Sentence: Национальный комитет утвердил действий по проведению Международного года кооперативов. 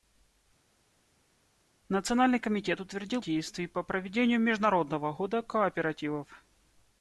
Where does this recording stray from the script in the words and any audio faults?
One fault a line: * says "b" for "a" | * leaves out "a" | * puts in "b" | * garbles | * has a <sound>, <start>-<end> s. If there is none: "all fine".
all fine